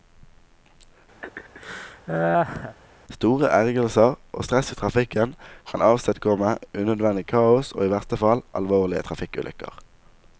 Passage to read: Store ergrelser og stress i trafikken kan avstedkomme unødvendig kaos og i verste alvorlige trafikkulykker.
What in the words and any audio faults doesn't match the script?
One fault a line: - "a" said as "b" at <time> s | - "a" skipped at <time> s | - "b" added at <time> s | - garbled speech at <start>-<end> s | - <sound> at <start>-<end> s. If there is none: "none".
- laugh at 1.2-2.8 s
- "fall" added at 8.2 s